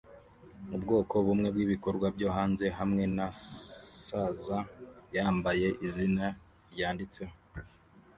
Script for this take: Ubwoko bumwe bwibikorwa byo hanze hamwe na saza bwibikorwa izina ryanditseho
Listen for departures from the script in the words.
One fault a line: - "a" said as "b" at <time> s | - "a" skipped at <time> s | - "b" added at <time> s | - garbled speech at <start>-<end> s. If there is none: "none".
- "bwibikorwa" said as "yambaye" at 5.2 s